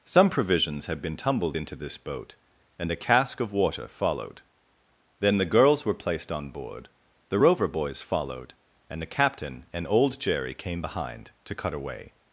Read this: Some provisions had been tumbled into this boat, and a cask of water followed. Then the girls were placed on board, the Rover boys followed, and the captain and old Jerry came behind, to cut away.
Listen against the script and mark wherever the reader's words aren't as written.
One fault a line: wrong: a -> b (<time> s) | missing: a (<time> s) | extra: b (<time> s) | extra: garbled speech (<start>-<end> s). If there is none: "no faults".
no faults